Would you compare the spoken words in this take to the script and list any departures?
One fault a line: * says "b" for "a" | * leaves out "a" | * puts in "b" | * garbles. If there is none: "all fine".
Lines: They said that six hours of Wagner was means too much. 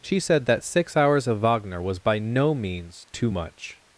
* says "She" for "They"
* puts in "by no"